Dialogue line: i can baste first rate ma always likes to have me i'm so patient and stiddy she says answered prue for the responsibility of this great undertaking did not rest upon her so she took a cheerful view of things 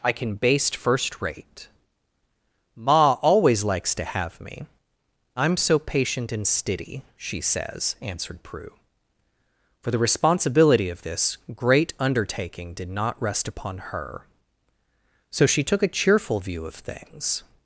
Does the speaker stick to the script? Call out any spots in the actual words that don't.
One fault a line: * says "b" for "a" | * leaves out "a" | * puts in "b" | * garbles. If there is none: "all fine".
all fine